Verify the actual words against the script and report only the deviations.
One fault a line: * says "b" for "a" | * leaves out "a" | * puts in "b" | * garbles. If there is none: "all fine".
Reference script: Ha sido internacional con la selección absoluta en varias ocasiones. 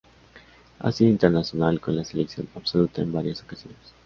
all fine